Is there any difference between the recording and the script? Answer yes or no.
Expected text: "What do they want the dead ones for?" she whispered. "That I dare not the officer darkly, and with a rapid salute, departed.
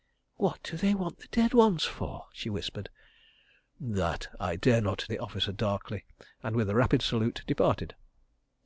no